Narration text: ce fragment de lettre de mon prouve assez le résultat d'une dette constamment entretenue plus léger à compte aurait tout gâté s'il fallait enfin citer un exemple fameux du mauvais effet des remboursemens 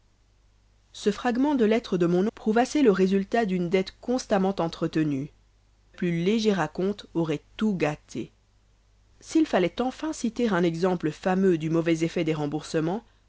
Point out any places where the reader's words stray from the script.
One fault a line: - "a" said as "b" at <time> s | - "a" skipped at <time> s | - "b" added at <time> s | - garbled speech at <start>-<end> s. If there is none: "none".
none